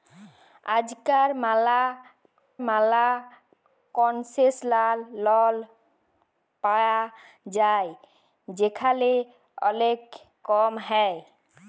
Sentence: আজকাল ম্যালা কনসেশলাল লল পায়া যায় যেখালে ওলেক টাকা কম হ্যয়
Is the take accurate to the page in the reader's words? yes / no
no